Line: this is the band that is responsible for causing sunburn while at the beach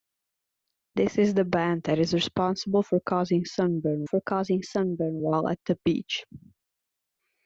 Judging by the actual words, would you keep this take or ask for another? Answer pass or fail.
fail